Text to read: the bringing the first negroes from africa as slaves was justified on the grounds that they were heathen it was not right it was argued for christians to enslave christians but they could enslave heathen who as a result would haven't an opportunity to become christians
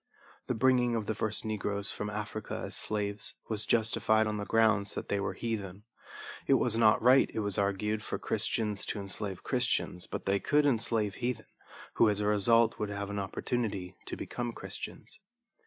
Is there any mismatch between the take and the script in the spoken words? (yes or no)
yes